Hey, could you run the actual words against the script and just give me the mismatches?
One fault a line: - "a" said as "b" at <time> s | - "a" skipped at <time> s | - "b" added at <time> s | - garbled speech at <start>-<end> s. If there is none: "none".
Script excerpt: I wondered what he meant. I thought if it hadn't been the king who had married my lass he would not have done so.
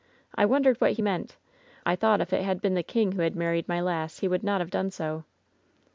- "hadn't" said as "had" at 2.4 s